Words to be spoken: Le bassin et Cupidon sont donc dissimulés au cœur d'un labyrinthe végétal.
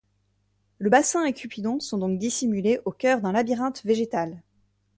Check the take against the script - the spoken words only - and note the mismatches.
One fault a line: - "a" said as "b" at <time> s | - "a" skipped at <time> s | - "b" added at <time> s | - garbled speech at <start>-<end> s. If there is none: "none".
none